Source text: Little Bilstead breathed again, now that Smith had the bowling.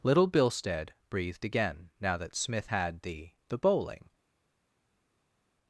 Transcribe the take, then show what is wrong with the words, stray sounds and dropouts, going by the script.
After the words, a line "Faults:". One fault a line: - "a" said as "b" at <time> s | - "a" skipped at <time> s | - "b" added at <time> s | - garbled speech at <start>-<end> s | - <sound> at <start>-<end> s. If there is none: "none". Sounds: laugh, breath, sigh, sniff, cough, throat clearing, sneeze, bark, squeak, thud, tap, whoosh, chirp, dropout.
Little Bilstead breathed again, now that Smith had the the bowling.
Faults:
- "the" added at 3.5 s